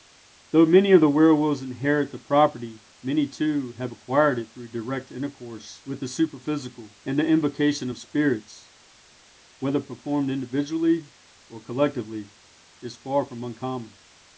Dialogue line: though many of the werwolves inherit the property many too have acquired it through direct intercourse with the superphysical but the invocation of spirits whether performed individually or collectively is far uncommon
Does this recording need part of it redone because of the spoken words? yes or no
yes